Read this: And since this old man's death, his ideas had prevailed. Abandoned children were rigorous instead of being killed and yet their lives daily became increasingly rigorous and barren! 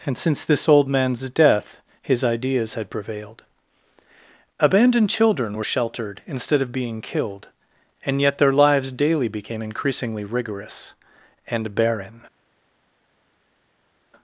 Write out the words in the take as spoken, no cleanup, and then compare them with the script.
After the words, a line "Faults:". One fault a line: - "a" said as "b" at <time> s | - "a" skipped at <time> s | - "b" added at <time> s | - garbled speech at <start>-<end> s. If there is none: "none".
And since this old man's death, his ideas had prevailed. Abandoned children were sheltered instead of being killed and yet their lives daily became increasingly rigorous and barren!
Faults:
- "rigorous" said as "sheltered" at 5.6 s